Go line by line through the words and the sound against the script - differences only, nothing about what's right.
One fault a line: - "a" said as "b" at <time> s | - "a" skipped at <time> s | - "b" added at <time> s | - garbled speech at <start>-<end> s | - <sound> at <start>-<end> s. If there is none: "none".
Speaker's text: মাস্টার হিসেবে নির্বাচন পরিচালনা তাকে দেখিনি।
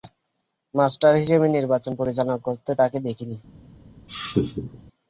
- "করতে" added at 2.5 s
- laugh at 4.1-4.8 s